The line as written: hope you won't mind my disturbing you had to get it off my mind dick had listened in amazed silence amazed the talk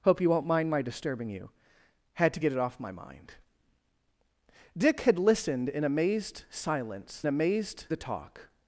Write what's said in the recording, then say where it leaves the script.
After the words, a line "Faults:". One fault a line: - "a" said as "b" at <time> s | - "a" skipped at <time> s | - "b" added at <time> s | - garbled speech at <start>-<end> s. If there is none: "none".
hope you won't mind my disturbing you had to get it off my mind dick had listened in amazed silence amazed the talk
Faults:
none